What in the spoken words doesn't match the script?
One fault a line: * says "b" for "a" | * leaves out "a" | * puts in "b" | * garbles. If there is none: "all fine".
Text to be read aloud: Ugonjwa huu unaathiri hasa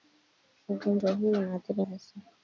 all fine